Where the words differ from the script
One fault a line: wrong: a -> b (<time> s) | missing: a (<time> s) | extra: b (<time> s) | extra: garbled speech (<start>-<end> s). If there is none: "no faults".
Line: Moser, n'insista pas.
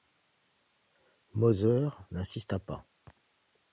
no faults